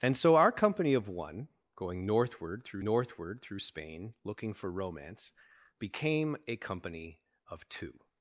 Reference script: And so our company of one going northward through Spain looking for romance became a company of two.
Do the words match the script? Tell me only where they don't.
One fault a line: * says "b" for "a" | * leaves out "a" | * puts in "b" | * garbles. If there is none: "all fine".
* puts in "northward through"